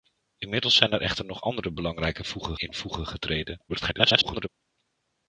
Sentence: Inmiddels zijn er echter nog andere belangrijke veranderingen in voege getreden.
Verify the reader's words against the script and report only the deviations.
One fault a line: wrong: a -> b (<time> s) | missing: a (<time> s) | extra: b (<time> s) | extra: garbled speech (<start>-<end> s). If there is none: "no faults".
wrong: veranderingen -> voege (2.2 s)
extra: garbled speech (3.7-4.5 s)